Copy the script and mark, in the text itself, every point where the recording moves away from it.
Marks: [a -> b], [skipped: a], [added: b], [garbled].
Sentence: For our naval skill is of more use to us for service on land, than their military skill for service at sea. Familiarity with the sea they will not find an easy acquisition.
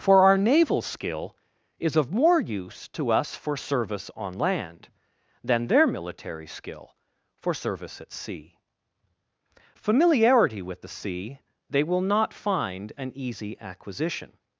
For our naval skill is of more use to us for service on land, than their military skill for service at sea. Familiarity with the sea they will not find an easy acquisition.